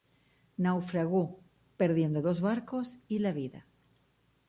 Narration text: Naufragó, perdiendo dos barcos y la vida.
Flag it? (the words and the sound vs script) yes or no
no